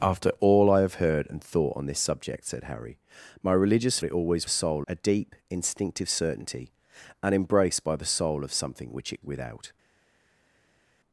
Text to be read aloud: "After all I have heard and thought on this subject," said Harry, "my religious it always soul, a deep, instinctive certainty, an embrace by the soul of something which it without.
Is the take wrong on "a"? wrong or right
right